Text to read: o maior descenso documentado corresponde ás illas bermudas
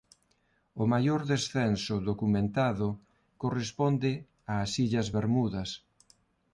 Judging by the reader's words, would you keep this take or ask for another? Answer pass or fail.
pass